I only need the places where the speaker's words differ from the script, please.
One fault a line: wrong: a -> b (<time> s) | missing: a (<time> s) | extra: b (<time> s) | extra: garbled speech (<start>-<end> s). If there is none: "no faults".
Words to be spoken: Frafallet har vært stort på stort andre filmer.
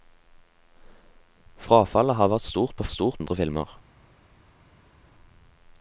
no faults